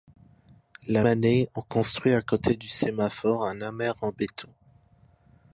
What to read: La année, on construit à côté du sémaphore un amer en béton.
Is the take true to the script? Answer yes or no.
yes